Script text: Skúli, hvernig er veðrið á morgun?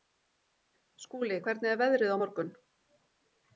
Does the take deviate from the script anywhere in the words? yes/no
no